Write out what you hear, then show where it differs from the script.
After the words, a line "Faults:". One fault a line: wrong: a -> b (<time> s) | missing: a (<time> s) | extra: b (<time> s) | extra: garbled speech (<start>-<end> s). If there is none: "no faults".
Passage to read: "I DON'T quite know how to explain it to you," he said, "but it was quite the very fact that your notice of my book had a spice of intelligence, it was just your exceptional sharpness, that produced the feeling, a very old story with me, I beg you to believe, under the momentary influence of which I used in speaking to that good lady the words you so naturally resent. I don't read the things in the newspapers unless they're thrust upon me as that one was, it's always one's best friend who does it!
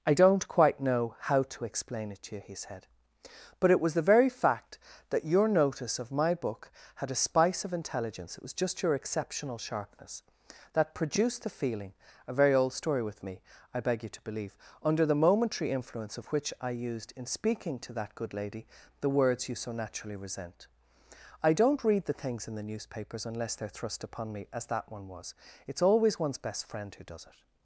"I DON'T quite know how to explain it to you," he said, "but it was the very fact that your notice of my book had a spice of intelligence, it was just your exceptional sharpness, that produced the feeling, a very old story with me, I beg you to believe, under the momentary influence of which I used in speaking to that good lady the words you so naturally resent. I don't read the things in the newspapers unless they're thrust upon me as that one was, it's always one's best friend who does it!
Faults:
missing: quite (3.9 s)